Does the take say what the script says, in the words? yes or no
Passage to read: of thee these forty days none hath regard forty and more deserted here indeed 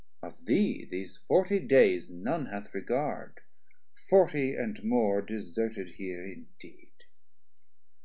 yes